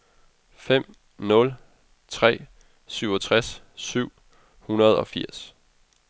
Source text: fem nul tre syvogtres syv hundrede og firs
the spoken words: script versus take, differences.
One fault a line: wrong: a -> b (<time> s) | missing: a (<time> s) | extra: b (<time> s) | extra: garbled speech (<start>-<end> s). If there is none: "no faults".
no faults